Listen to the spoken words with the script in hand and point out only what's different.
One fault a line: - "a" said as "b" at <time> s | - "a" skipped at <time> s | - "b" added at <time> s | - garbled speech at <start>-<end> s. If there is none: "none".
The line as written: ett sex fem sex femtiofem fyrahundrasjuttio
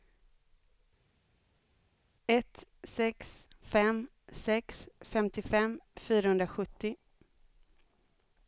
none